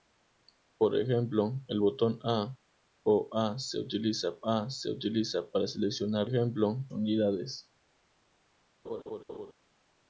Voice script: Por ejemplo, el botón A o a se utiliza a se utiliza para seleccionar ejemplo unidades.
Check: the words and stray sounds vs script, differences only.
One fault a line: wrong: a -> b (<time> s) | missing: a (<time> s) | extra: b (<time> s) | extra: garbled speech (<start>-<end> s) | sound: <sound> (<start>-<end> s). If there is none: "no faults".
sound: laugh (8.8-9.5 s)